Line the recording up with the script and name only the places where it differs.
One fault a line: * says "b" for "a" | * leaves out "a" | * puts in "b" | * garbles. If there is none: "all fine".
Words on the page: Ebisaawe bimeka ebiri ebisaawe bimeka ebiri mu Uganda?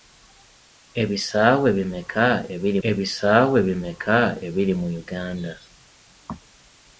all fine